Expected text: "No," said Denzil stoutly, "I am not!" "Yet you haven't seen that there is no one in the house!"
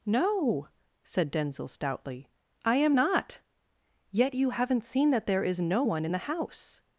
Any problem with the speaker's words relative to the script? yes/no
no